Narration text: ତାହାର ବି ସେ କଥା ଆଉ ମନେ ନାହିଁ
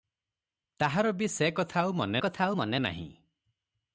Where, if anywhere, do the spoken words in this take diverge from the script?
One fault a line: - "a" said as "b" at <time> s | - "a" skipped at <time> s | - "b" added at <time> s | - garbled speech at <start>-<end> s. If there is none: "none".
- "କଥା ଆଉ ମନେ" added at 2.2 s